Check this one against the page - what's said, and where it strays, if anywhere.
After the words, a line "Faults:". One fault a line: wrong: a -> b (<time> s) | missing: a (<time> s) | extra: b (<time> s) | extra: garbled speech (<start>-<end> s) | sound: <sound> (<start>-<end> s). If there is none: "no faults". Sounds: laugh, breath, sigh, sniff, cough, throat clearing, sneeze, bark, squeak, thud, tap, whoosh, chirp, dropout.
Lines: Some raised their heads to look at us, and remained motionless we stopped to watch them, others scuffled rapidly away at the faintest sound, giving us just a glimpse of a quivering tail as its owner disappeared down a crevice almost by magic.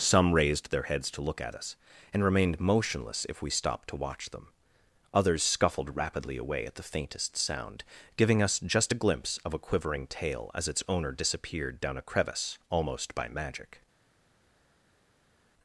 Some raised their heads to look at us, and remained motionless if we stopped to watch them, others scuffled rapidly away at the faintest sound, giving us just a glimpse of a quivering tail as its owner disappeared down a crevice almost by magic.
Faults:
extra: if (3.3 s)